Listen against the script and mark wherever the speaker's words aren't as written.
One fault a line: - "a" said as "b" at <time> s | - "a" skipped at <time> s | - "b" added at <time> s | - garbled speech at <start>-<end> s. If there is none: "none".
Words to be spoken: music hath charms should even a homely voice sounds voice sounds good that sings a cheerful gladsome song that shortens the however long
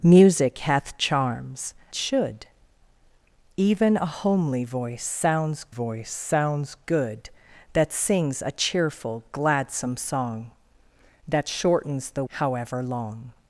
none